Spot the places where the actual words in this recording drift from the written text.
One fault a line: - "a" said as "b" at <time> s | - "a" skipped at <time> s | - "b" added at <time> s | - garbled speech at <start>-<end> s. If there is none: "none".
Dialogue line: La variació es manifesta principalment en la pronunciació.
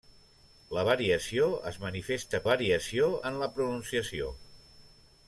- "principalment" said as "variació" at 2.5 s